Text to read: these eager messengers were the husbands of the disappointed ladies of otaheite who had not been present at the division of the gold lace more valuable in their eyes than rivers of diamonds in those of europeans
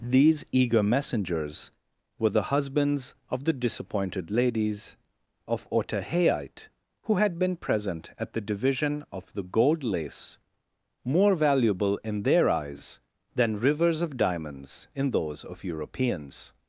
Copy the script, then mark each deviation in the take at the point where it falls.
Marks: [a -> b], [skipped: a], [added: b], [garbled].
these eager messengers were the husbands of the disappointed ladies of otaheite who had [skipped: not] been present at the division of the gold lace more valuable in their eyes than rivers of diamonds in those of europeans